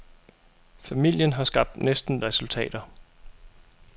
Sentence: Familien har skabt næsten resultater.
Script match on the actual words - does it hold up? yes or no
yes